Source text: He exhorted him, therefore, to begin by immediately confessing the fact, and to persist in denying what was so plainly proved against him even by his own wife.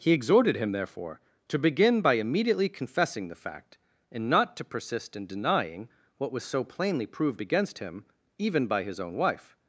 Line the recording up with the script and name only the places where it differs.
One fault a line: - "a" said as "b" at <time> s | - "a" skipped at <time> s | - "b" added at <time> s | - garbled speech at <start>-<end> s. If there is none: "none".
- "not" added at 4.3 s